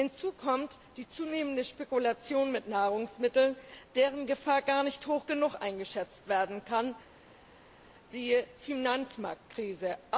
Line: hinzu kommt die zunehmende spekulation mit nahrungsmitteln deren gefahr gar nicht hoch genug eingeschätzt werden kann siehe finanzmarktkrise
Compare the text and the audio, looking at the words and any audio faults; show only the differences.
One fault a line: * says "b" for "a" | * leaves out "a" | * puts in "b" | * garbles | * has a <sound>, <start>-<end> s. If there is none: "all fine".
all fine